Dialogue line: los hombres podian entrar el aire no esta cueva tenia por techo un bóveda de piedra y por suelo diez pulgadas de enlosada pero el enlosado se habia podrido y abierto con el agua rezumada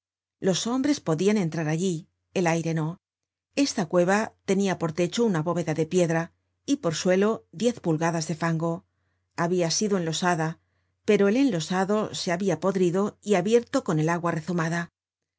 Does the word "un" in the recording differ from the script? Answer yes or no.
yes